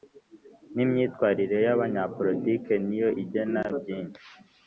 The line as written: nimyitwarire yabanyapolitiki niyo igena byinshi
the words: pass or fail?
pass